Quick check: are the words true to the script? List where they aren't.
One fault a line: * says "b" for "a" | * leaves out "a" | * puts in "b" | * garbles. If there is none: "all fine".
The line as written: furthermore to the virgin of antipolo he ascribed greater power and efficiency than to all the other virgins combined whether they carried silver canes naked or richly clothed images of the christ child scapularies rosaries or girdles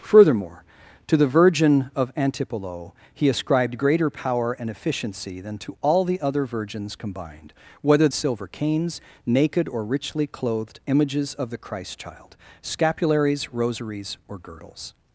* leaves out "they carried"